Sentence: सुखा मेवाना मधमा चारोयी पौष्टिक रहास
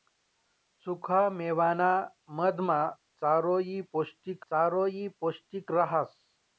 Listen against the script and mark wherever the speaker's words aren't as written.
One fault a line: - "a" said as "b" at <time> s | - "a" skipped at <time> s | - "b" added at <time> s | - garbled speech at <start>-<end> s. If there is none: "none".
- "चारोयी पौष्टिक" added at 4.5 s